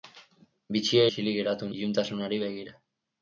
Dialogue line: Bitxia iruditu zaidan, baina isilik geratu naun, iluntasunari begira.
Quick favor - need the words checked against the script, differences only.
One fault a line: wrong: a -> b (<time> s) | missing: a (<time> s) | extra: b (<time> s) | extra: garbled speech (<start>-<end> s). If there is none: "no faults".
missing: iruditu zaidan baina (1.0 s)
missing: naun (1.7 s)